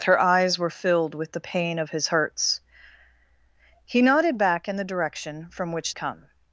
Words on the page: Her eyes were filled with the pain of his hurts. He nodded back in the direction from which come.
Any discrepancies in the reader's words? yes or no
no